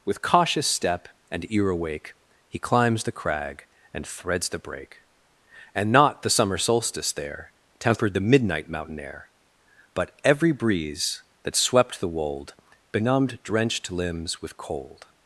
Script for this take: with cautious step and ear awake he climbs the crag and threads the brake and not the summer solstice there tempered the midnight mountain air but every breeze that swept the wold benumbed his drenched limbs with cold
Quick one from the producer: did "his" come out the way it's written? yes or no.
no